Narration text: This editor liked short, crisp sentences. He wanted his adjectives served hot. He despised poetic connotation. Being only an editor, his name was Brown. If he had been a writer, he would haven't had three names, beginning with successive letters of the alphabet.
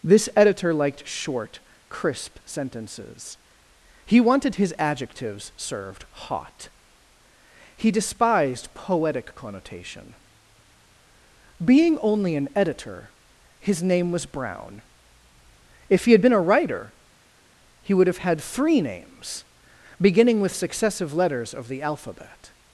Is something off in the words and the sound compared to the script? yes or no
yes